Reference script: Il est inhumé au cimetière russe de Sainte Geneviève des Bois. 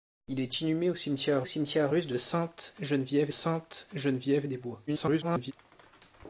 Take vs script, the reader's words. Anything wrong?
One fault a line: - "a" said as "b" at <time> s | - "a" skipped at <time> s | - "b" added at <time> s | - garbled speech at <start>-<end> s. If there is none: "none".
- "cimetière" added at 1.4 s
- "Sainte Geneviève" added at 3.3 s
- garbled speech at 4.9-5.5 s